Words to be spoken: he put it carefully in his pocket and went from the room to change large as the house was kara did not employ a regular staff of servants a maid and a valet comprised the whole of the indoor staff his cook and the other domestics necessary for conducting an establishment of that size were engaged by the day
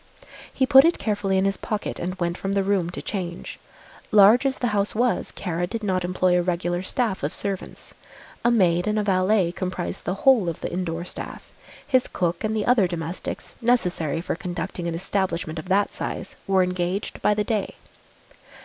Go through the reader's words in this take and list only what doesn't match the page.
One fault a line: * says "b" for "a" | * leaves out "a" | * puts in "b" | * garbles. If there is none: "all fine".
all fine